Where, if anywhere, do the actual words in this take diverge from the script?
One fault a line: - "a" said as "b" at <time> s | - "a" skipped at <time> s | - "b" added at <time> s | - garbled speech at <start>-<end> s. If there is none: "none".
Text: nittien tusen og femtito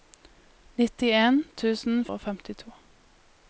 none